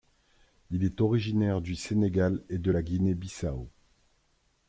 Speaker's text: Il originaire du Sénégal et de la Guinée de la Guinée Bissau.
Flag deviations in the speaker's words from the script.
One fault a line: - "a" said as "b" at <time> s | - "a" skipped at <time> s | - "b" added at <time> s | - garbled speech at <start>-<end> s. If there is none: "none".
- "est" added at 0.8 s
- "de la Guinée" skipped at 3.1 s